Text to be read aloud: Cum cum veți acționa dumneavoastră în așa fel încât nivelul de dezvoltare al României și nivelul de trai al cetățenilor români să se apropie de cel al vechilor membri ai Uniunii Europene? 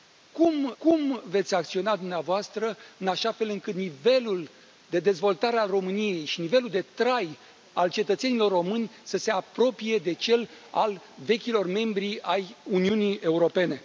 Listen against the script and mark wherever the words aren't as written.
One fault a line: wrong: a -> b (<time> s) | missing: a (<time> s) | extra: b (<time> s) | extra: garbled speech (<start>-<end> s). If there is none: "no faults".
no faults